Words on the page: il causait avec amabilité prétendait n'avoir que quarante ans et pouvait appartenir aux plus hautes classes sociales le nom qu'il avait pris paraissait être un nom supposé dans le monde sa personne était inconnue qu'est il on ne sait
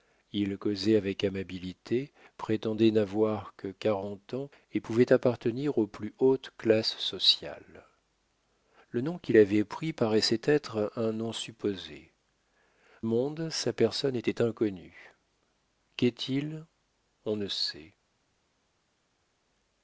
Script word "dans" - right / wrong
wrong